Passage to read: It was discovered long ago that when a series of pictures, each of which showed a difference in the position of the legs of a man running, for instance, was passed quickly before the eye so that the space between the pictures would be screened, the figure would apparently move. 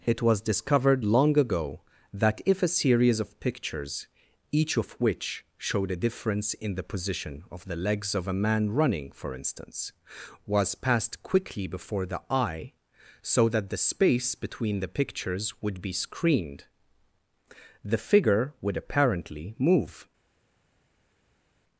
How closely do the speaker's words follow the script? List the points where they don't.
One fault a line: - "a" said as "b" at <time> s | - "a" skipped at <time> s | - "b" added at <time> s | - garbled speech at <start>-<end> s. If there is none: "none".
- "when" said as "if" at 2.4 s